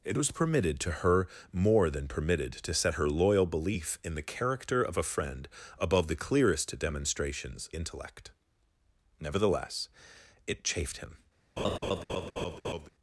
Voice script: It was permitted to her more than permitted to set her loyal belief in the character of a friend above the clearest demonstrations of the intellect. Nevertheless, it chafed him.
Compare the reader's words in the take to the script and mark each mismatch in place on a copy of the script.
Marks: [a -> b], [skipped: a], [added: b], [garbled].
It was permitted to her more than permitted to set her loyal belief in the character of a friend above the clearest demonstrations [skipped: of the] intellect. Nevertheless, it chafed him.